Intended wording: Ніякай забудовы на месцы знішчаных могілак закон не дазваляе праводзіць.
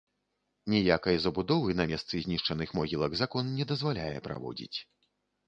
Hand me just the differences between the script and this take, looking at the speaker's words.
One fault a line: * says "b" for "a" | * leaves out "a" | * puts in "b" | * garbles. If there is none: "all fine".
all fine